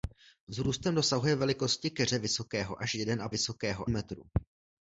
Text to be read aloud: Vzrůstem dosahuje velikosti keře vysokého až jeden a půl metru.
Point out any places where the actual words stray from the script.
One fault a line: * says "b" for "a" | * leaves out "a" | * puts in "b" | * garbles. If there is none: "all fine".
* says "vysokého" for "půl"